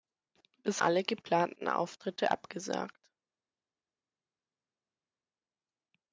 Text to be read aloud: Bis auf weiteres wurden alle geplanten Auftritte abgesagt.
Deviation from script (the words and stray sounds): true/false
true